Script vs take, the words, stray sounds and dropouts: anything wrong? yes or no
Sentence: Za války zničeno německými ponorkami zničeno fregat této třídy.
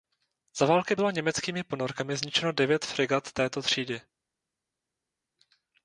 yes